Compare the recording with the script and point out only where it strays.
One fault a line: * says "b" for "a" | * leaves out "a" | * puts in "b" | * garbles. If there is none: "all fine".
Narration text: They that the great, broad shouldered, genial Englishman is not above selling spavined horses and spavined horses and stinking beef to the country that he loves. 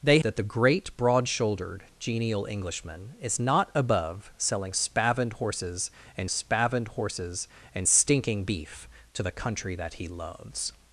all fine